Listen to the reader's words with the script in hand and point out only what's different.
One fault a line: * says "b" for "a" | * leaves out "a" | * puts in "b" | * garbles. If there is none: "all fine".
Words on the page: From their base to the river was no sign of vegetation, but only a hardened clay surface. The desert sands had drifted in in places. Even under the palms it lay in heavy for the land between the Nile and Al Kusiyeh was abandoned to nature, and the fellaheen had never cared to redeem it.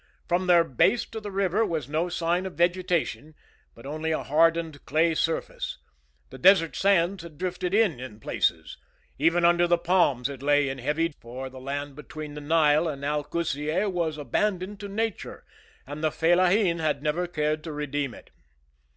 all fine